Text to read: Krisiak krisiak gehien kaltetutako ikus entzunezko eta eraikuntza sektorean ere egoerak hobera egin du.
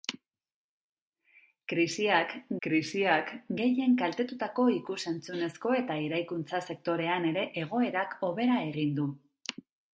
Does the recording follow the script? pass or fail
pass